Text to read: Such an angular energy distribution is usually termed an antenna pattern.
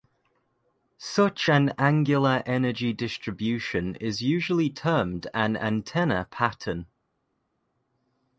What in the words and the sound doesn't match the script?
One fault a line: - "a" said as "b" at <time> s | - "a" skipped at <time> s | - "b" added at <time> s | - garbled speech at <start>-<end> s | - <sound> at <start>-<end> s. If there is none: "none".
none